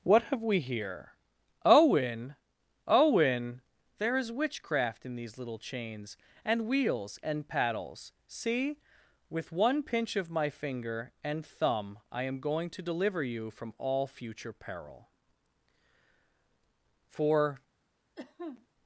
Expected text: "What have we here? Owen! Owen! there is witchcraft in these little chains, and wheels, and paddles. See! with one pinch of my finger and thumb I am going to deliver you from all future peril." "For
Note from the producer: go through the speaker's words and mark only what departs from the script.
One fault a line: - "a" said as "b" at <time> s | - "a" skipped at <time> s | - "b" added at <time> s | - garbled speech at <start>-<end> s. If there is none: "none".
none